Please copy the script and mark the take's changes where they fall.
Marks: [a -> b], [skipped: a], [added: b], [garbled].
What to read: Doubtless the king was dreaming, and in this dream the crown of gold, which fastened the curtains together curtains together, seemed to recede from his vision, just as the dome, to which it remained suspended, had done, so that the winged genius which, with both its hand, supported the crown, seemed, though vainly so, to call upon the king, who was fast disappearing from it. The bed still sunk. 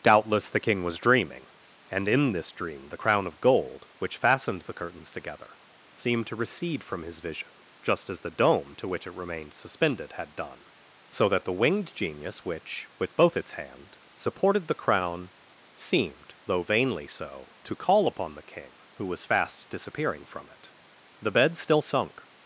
Doubtless the king was dreaming, and in this dream the crown of gold, which fastened the curtains together [skipped: curtains together,] seemed to recede from his vision, just as the dome, to which it remained suspended, had done, so that the winged genius which, with both its hand, supported the crown, seemed, though vainly so, to call upon the king, who was fast disappearing from it. The bed still sunk.